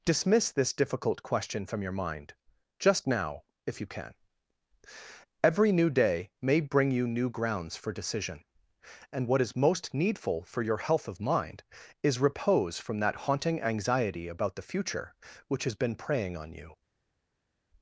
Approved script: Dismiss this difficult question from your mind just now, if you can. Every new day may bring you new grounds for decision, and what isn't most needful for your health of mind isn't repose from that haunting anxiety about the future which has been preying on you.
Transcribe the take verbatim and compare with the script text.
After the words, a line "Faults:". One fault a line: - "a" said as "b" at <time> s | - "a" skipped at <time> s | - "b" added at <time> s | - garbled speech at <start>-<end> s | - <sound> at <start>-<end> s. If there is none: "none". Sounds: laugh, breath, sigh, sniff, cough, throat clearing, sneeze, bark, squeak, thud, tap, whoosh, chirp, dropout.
Dismiss this difficult question from your mind just now, if you can. Every new day may bring you new grounds for decision, and what is most needful for your health of mind is repose from that haunting anxiety about the future which has been preying on you.
Faults:
- "isn't" said as "is" at 9.4 s
- "isn't" said as "is" at 12.0 s